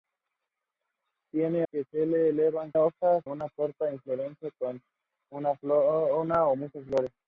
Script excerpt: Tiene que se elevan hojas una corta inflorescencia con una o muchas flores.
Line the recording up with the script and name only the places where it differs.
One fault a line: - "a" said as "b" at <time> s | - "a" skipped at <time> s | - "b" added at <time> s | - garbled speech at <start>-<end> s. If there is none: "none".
none